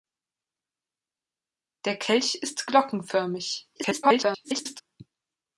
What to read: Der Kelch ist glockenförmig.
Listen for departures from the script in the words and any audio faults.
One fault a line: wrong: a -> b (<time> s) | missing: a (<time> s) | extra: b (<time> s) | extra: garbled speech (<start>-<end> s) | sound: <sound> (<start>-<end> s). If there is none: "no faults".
extra: garbled speech (3.8-4.8 s)